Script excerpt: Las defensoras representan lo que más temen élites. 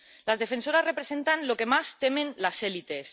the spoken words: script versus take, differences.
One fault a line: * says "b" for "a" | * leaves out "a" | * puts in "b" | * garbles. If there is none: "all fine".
* puts in "las"